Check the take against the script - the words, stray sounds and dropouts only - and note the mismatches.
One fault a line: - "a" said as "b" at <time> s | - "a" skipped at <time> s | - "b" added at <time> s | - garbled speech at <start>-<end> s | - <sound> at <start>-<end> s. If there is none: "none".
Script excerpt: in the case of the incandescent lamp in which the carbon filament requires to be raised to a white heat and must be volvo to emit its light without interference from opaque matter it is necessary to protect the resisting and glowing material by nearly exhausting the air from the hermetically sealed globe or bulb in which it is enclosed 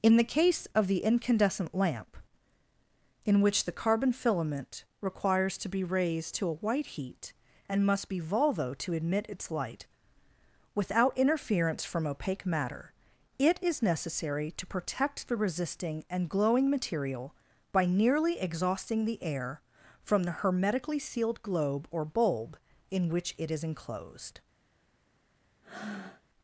- breath at 25.6-26.2 s